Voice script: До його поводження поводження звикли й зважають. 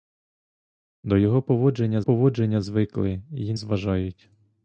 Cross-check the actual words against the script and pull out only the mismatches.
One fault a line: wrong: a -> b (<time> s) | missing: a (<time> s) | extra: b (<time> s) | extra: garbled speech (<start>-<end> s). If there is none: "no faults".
no faults